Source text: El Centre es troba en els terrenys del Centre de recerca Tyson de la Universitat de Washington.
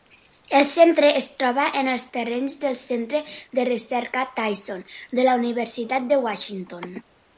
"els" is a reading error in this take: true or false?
false